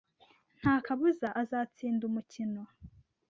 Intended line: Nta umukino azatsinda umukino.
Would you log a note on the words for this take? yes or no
yes